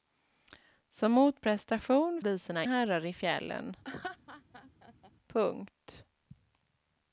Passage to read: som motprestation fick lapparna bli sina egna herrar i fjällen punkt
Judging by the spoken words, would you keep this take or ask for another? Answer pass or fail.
fail